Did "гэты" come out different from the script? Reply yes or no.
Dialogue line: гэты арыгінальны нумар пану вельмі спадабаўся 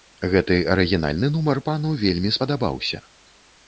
no